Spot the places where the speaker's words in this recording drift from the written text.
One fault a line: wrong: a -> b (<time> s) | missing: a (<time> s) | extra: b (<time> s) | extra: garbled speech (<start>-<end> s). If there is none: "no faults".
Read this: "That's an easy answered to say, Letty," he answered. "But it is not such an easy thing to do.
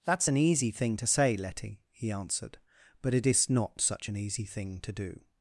wrong: answered -> thing (0.7 s)